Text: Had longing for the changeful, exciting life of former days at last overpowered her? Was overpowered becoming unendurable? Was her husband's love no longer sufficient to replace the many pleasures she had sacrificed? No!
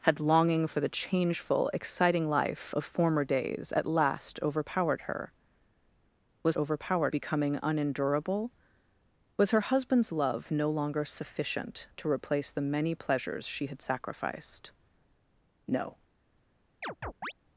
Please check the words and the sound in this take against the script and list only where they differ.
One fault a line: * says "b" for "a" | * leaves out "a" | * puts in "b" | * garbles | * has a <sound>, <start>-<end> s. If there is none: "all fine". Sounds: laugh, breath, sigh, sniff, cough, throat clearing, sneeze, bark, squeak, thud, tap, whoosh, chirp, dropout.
* has a chirp, 16.8-17.3 s